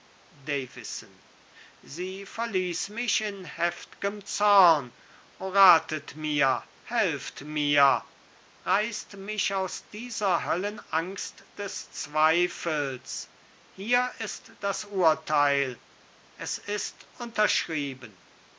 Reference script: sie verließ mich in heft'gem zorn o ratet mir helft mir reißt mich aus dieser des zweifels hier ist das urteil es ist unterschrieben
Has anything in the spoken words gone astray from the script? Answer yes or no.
yes